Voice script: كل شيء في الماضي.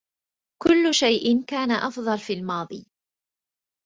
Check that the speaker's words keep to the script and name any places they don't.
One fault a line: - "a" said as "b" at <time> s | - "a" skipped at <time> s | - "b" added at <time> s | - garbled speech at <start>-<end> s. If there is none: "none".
- "كان أفضل" added at 1.4 s